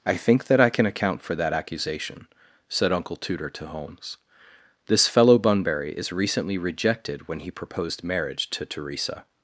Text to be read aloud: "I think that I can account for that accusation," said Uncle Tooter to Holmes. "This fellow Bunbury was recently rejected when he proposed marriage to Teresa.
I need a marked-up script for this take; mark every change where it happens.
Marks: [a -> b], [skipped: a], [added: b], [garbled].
"I think that I can account for that accusation," said Uncle Tooter to Holmes. "This fellow Bunbury [was -> is] recently rejected when he proposed marriage to Teresa.